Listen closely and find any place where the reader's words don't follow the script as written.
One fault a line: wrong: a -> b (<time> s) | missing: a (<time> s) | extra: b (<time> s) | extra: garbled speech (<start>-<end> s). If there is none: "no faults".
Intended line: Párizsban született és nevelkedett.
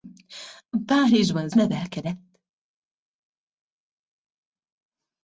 missing: született és (1.5 s)